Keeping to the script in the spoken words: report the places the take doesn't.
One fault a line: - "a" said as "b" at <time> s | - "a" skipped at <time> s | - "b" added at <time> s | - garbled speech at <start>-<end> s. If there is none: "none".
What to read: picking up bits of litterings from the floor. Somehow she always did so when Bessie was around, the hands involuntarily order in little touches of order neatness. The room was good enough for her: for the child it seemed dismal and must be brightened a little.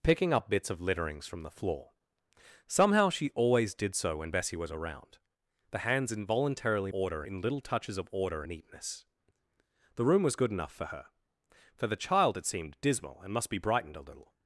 none